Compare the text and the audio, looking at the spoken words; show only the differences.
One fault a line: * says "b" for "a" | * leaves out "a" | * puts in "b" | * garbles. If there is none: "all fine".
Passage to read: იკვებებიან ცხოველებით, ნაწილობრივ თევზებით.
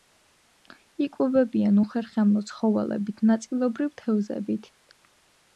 * puts in "უხერხემლო"